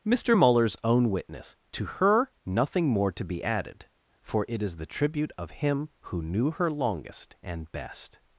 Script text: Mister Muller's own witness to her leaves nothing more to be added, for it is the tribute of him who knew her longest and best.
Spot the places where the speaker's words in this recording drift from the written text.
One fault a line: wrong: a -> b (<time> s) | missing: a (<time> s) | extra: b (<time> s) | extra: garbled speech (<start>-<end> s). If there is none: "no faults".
missing: leaves (2.3 s)